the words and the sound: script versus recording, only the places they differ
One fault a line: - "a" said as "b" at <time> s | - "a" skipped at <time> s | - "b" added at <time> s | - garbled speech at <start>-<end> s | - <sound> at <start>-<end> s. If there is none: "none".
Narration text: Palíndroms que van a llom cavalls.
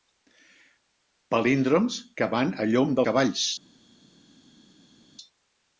none